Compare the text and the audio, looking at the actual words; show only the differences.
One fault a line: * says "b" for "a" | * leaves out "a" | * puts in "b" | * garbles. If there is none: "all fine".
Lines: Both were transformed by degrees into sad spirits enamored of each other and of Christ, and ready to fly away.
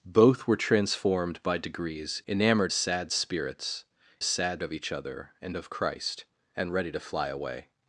* says "enamored" for "into"
* says "sad" for "enamored"